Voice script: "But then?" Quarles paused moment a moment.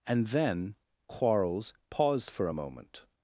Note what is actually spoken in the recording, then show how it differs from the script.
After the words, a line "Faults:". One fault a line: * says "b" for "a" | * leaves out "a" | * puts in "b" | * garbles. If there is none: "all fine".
"And then?" Quarles paused for a moment.
Faults:
* says "And" for "But"
* says "for" for "moment"